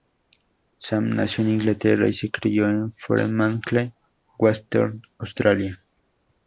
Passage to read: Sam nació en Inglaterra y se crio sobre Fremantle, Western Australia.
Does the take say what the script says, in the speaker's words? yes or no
no